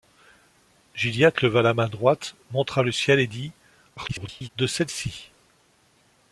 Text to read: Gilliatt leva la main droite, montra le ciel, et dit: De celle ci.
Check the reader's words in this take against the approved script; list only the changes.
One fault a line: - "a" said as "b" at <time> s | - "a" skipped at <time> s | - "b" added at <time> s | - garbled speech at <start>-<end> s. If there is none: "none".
- garbled speech at 4.0-4.5 s